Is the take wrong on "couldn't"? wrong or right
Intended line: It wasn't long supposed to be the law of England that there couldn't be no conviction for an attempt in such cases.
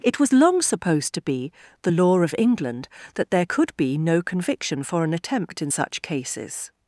wrong